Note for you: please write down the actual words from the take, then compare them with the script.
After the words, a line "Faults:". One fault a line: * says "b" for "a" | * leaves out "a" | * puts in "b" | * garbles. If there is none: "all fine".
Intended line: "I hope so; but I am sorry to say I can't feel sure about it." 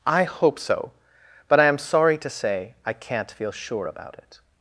"I hope so; but I am sorry to say I can't feel sure about it."
Faults:
all fine